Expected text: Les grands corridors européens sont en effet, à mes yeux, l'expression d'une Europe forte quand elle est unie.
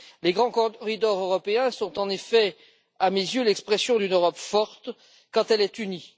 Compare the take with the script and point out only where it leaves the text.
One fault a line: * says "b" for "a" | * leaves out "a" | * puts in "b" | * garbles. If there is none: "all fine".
all fine